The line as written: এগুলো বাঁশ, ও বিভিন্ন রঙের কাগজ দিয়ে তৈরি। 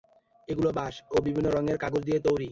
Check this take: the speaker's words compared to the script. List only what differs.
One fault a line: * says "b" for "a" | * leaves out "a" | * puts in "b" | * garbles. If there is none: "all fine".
all fine